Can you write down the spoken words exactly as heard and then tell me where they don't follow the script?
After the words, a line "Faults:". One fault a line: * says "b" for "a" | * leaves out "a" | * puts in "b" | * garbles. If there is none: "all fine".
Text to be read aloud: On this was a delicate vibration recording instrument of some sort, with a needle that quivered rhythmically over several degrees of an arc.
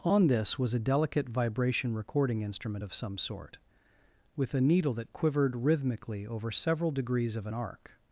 On this was a delicate vibration recording instrument of some sort, with a needle that quivered rhythmically over several degrees of an arc.
Faults:
all fine